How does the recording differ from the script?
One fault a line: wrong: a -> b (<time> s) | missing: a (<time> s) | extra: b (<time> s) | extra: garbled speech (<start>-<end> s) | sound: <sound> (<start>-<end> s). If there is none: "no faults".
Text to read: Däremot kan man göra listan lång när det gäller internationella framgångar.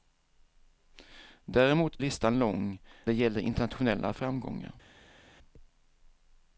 missing: kan man göra (2.0 s)
missing: när (2.8 s)